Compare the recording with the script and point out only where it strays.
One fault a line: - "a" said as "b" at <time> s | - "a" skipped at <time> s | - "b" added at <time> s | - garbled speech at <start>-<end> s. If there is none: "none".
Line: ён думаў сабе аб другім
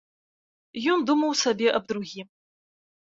none